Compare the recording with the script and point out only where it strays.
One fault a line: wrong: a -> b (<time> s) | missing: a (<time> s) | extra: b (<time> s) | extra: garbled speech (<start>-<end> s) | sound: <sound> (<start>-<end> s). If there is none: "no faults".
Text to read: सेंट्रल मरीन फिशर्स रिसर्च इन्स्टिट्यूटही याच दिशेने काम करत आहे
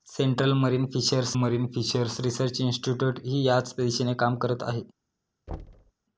extra: मरीन फिशर्स (1.3 s)
sound: thud (5.5-5.9 s)